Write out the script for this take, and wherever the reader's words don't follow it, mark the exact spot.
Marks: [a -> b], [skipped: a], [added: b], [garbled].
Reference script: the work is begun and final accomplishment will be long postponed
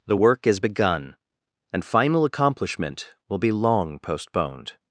the work is begun and final accomplishment will be long postponed